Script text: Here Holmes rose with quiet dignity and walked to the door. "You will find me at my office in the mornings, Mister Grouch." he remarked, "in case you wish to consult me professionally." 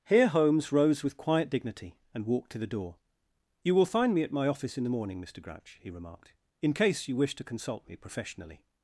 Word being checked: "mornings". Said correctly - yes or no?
no